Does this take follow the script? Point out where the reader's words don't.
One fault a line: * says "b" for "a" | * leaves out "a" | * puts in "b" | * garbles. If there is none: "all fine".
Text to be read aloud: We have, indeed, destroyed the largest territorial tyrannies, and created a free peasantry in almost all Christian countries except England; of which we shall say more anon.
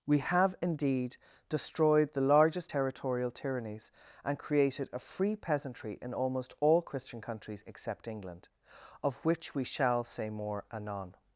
all fine